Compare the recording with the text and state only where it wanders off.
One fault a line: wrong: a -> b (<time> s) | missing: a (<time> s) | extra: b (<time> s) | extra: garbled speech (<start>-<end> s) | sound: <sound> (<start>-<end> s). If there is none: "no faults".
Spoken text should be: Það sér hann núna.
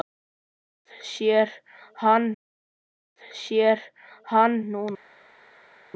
extra: það sér hann (2.3 s)